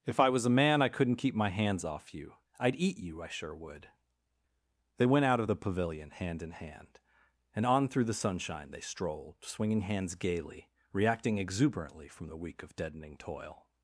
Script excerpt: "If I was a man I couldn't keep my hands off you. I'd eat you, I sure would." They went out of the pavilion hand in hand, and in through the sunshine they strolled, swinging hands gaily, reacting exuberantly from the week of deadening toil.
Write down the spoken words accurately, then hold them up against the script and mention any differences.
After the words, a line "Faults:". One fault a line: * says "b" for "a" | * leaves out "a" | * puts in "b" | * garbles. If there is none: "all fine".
"If I was a man I couldn't keep my hands off you. I'd eat you, I sure would." They went out of the pavilion hand in hand, and on through the sunshine they strolled, swinging hands gaily, reacting exuberantly from the week of deadening toil.
Faults:
* says "on" for "in"